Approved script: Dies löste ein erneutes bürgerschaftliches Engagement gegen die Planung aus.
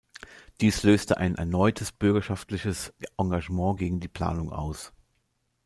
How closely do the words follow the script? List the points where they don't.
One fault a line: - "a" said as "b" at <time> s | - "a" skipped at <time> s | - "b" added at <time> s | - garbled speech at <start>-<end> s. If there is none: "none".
none